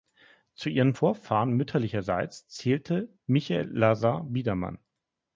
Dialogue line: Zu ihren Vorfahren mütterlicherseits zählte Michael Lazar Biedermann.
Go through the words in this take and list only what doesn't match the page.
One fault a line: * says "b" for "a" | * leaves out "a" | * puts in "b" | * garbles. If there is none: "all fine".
all fine